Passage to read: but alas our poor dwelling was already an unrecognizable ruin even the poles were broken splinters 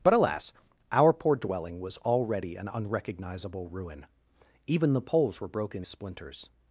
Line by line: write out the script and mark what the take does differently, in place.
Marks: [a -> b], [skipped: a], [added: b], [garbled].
but alas our poor dwelling was already an unrecognizable ruin even the poles were broken splinters